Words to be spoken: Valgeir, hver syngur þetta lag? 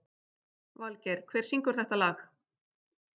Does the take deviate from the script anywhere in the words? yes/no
no